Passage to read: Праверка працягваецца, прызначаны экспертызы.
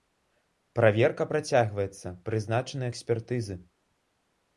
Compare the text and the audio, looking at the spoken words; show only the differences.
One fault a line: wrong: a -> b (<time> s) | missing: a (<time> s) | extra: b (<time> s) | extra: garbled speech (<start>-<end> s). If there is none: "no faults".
no faults